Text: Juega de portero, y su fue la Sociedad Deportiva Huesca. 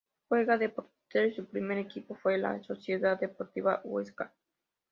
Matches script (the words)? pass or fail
fail